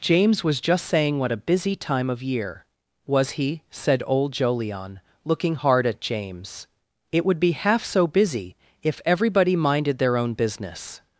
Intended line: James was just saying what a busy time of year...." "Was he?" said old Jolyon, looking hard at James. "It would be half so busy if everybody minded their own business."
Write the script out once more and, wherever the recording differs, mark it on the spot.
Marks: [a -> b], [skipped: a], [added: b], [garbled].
James was just saying what a busy time of year...." "Was he?" said old Jolyon, looking hard at James. "It would be half so busy if everybody minded their own business."